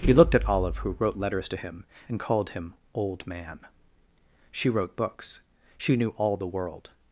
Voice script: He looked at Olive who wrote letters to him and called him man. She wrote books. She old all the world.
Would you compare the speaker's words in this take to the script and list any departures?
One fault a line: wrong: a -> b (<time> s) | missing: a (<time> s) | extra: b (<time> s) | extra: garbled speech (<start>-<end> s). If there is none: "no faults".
extra: old (2.9 s)
wrong: old -> knew (6.0 s)